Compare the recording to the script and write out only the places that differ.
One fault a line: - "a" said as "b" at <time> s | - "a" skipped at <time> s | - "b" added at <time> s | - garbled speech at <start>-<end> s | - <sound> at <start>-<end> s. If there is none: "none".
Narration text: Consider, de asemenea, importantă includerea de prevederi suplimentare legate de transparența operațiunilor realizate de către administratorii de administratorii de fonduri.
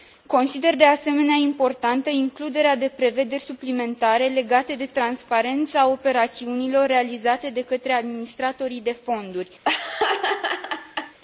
- "administratorii de" skipped at 9.0 s
- laugh at 9.6-11.2 s